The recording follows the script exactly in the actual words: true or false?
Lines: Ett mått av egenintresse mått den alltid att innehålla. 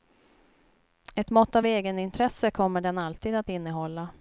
false